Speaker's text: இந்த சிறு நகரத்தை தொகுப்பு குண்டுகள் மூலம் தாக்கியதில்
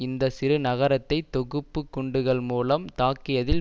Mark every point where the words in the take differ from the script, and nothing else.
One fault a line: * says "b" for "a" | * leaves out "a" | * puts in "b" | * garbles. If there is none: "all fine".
all fine